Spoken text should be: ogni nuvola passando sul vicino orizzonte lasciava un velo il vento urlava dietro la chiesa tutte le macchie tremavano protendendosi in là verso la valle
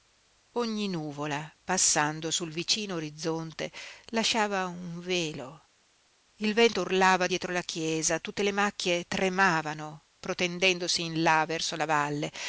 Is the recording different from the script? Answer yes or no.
no